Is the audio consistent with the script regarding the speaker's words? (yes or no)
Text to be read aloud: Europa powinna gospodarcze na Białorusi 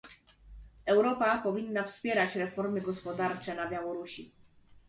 no